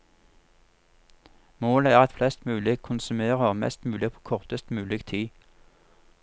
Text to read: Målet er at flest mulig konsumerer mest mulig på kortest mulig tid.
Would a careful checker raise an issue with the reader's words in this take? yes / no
no